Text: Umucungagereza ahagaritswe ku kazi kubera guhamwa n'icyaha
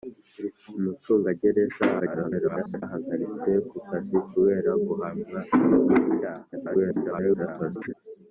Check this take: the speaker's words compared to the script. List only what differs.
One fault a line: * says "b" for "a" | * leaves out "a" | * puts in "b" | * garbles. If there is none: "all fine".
* garbles
* garbles